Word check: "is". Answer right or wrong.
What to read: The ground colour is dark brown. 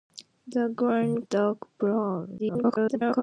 wrong